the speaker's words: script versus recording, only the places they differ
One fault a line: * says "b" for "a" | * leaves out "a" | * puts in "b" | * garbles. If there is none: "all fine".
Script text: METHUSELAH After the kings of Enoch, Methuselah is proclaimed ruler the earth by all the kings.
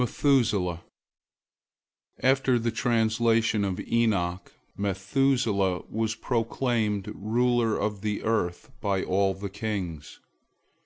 * says "translation" for "kings"
* says "was" for "is"
* puts in "of"